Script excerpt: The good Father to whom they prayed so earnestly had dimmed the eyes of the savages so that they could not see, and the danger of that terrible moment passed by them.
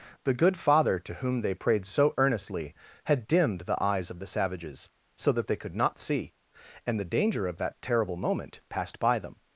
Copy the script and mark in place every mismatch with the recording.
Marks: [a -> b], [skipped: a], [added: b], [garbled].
The good Father to whom they prayed so earnestly had dimmed the eyes of the savages so that they could not see, and the danger of that terrible moment passed by them.